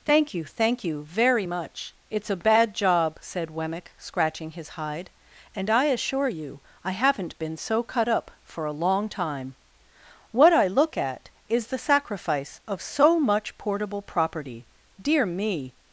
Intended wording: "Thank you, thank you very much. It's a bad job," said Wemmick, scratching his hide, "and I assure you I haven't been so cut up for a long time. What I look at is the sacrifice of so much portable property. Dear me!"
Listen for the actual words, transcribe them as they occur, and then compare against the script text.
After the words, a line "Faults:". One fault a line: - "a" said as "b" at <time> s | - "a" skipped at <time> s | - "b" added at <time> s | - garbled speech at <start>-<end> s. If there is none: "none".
"Thank you, thank you very much. It's a bad job," said Wemmick, scratching his hide, "and I assure you I haven't been so cut up for a long time. What I look at is the sacrifice of so much portable property. Dear me!"
Faults:
none